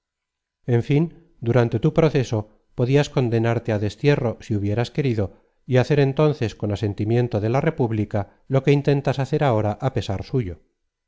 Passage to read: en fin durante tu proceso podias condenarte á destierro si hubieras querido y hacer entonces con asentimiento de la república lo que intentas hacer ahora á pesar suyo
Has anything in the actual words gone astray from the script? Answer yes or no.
no